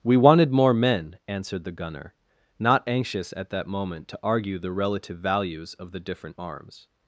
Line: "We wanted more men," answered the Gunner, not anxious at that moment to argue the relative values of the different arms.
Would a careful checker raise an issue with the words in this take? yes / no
no